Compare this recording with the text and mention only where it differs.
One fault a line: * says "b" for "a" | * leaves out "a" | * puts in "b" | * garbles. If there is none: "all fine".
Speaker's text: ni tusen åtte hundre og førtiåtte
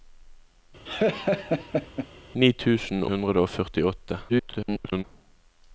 * leaves out "åtte"
* garbles